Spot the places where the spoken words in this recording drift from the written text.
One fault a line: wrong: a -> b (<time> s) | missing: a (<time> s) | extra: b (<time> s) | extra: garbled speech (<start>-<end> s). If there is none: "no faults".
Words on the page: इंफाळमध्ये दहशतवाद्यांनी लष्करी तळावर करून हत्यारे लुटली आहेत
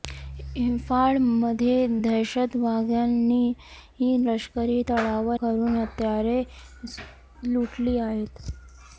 no faults